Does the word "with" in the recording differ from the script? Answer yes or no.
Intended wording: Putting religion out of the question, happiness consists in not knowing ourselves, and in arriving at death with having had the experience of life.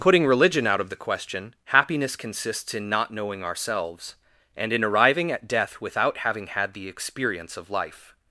yes